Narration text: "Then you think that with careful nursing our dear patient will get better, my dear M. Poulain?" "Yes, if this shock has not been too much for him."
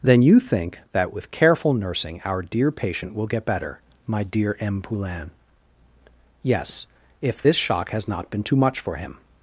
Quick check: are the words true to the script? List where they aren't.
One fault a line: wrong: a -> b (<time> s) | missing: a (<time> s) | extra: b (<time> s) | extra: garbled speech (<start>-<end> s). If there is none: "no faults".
no faults